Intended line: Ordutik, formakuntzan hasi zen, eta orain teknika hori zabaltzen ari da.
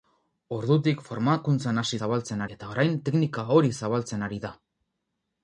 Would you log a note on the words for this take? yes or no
yes